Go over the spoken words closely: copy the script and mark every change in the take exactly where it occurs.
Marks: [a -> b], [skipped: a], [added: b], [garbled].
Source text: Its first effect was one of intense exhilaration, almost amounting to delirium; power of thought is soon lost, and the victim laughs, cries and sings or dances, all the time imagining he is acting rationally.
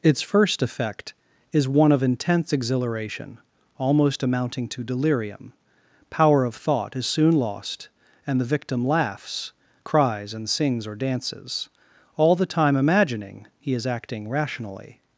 Its first effect [was -> is] one of intense exhilaration, almost amounting to delirium; power of thought is soon lost, and the victim laughs, cries and sings or dances, all the time imagining he is acting rationally.